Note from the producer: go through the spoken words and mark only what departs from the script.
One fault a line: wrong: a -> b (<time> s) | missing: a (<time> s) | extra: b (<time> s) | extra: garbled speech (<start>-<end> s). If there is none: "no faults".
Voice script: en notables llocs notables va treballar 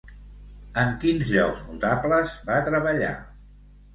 wrong: notables -> quins (1.0 s)